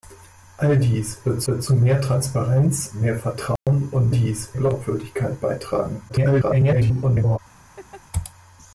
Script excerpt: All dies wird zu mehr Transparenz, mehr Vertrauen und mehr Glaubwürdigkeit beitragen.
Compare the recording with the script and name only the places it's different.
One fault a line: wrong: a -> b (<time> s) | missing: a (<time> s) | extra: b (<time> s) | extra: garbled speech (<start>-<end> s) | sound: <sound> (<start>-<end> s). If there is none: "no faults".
extra: wird (1.5 s)
sound: dropout (3.6-3.7 s)
wrong: mehr -> dies (4.1 s)
extra: garbled speech (6.1-7.4 s)
sound: laugh (7.8-8.0 s)